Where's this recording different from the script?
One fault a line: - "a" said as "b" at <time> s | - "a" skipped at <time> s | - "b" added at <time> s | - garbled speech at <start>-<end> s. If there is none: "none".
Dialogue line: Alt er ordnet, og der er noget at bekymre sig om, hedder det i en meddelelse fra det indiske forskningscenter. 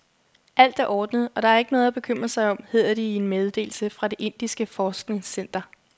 - "ikke" added at 1.6 s